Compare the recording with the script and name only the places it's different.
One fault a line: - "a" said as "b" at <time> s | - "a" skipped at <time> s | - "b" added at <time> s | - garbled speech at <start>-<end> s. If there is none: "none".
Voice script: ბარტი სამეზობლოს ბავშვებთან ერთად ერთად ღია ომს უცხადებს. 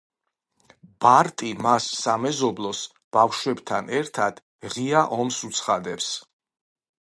- "მას" added at 1.6 s
- "ერთად" skipped at 4.4 s